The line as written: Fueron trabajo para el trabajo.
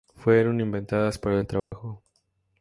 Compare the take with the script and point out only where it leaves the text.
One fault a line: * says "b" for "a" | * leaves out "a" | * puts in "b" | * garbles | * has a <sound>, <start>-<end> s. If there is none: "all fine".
* says "inventadas" for "trabajo"
* has a dropout, 1.6-1.7 s